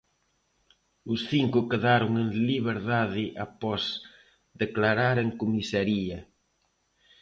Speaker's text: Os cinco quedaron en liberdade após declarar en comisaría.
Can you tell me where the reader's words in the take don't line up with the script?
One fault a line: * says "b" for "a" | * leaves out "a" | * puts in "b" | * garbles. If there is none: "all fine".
all fine